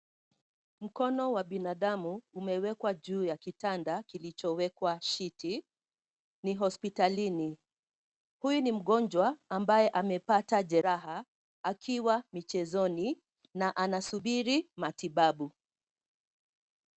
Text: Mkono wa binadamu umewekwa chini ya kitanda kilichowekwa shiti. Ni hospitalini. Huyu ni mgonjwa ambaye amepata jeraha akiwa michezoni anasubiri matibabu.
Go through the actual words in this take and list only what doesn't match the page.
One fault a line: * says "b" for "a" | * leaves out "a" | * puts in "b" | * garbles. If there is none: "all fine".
* says "juu" for "chini"
* puts in "na"